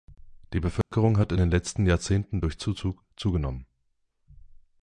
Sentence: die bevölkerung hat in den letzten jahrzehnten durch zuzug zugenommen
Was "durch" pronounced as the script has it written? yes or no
yes